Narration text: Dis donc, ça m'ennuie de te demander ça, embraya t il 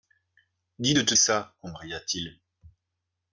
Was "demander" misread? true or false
true